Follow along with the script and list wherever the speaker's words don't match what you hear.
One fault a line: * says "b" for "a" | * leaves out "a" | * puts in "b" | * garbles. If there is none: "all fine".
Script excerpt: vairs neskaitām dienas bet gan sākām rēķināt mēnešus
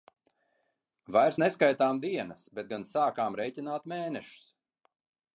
all fine